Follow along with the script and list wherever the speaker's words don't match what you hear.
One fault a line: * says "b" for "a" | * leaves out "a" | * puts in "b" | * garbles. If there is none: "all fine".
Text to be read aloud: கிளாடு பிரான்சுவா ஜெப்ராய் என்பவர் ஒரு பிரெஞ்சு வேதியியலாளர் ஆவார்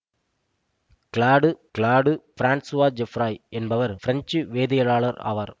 * puts in "கிளாடு"
* leaves out "ஒரு"